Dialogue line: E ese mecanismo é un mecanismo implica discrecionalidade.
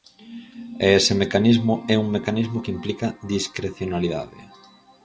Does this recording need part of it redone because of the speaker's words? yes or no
yes